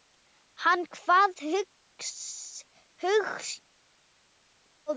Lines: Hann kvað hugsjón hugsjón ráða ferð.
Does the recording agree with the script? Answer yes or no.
no